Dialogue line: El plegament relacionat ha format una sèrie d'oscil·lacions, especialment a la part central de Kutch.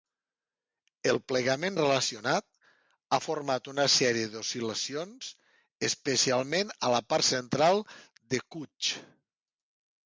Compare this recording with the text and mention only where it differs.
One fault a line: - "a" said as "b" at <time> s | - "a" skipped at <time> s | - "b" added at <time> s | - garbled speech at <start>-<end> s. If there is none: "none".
none